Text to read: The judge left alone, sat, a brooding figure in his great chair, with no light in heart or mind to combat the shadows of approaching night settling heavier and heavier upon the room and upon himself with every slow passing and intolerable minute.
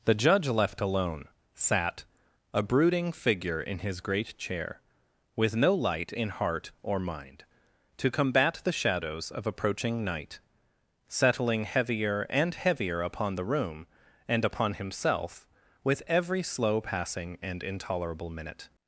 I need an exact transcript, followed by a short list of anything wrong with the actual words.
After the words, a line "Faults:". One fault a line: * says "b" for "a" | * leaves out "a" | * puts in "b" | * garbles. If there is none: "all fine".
The judge left alone, sat, a brooding figure in his great chair, with no light in heart or mind to combat the shadows of approaching night settling heavier and heavier upon the room and upon himself with every slow passing and intolerable minute.
Faults:
all fine